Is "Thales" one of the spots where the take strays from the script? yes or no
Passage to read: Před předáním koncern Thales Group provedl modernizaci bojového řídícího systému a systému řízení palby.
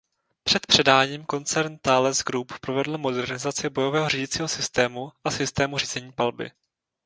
no